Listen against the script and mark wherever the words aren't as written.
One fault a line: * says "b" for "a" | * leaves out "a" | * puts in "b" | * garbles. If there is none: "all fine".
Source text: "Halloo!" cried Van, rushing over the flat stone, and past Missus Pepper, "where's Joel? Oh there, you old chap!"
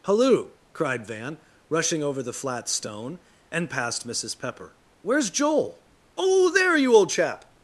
all fine